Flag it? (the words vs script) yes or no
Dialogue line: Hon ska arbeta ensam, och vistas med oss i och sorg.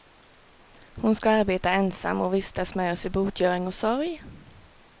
yes